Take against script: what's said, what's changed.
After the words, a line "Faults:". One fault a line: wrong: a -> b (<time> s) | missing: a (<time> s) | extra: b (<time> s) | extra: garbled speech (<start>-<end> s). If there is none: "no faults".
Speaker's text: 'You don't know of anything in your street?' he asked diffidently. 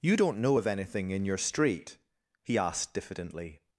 'You don't know of anything in your street?' he asked diffidently.
Faults:
no faults